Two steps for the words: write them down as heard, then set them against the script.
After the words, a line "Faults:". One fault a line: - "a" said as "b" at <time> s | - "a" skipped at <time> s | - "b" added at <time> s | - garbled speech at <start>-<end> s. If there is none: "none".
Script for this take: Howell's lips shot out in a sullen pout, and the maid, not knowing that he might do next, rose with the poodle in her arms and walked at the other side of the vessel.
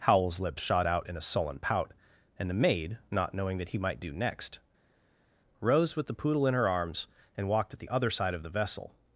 Howell's lips shot out in a sullen pout, and the maid, not knowing that he might do next, rose with the poodle in her arms and walked at the other side of the vessel.
Faults:
none